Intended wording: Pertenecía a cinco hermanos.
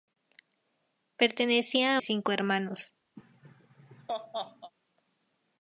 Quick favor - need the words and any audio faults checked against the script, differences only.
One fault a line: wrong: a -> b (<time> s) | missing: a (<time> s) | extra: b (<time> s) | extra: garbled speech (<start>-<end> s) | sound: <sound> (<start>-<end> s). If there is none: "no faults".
sound: laugh (3.2-4.7 s)